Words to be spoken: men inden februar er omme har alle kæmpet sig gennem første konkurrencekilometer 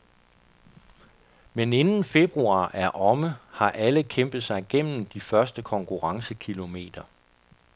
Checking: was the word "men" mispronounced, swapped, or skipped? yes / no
no